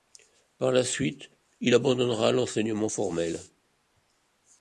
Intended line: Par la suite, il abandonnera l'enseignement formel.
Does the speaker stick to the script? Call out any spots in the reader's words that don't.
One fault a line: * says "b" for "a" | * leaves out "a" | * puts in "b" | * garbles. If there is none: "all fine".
all fine